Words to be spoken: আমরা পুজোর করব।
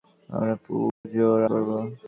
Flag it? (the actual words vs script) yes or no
no